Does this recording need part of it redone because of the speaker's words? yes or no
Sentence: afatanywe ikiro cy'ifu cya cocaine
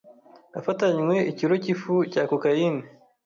no